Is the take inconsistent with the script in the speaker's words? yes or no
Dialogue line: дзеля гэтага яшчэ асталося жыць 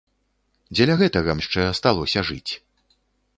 no